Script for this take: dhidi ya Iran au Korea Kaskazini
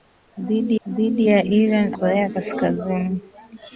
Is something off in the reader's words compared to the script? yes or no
yes